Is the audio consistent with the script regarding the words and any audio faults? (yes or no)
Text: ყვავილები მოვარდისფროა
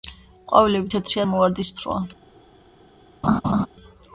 no